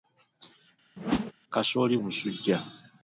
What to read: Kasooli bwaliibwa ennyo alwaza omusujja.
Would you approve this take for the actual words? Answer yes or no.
no